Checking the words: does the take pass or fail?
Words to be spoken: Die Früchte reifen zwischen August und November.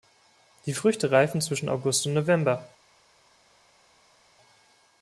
pass